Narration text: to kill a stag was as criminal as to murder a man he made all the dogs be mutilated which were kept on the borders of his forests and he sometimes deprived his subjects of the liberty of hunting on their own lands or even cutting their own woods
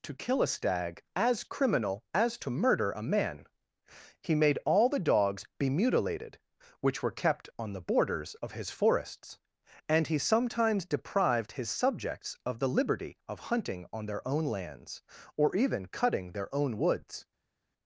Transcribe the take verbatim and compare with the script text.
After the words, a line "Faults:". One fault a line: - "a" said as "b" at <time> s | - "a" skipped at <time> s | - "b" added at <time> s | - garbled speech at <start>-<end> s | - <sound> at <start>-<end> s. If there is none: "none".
to kill a stag as criminal as to murder a man he made all the dogs be mutilated which were kept on the borders of his forests and he sometimes deprived his subjects of the liberty of hunting on their own lands or even cutting their own woods
Faults:
- "was" skipped at 1.0 s